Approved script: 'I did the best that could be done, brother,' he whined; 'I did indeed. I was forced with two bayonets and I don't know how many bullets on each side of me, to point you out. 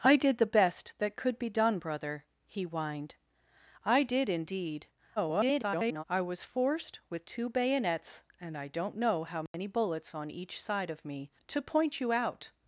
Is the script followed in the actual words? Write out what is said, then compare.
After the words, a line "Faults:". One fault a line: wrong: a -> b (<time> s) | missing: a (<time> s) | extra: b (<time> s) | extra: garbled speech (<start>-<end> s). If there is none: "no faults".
'I did the best that could be done, brother,' he whined; 'I did indeed. [garbled] I was forced with two bayonets and I don't know how many bullets on each side of me, to point you out.
Faults:
extra: garbled speech (5.2-6.0 s)